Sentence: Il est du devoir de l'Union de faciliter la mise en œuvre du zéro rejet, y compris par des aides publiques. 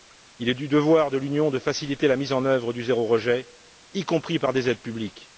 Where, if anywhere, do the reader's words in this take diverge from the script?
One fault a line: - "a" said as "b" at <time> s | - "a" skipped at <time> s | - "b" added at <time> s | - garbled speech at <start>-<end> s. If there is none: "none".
none